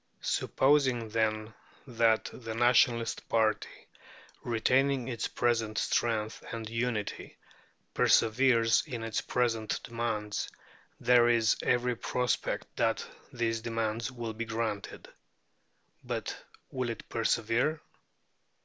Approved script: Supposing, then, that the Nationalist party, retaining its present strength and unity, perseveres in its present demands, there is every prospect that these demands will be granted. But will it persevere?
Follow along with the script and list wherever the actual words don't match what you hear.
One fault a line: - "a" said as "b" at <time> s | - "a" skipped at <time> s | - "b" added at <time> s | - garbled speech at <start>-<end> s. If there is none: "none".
none